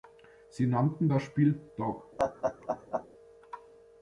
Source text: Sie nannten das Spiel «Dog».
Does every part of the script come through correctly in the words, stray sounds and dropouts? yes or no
no